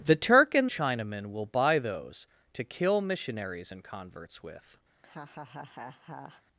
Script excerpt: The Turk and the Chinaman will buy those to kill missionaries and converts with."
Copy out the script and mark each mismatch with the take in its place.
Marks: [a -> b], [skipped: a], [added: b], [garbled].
The Turk and [skipped: the] Chinaman will buy those to kill missionaries and converts with."